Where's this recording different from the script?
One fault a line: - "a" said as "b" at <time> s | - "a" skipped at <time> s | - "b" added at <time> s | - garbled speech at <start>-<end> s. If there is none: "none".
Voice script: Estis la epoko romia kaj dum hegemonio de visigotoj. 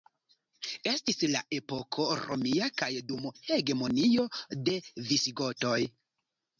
none